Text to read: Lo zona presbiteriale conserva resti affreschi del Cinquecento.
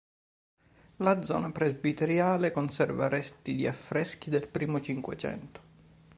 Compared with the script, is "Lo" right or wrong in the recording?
wrong